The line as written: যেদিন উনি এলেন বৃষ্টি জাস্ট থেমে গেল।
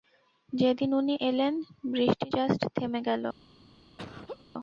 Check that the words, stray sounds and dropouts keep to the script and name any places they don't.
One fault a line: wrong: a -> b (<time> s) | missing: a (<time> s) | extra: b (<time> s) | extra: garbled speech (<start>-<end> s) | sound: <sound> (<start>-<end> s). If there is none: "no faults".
sound: laugh (4.0-4.4 s)